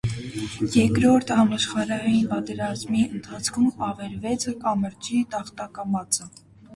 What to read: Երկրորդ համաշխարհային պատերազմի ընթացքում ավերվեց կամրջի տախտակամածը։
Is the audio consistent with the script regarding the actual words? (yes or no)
yes